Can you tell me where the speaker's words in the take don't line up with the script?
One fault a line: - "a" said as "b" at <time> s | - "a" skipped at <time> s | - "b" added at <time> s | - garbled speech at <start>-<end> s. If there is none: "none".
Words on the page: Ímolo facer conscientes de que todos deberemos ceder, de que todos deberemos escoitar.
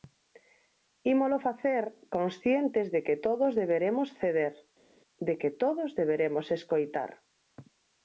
none